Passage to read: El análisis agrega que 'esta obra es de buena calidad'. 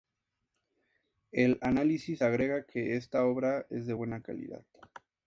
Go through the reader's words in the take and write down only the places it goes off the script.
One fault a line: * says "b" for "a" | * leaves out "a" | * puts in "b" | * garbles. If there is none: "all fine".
all fine